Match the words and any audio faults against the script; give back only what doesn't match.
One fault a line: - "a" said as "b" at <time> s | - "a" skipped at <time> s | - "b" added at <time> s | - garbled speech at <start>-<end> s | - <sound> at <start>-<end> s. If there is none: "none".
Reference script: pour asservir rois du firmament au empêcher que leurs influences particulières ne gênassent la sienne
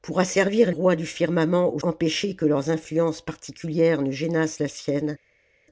none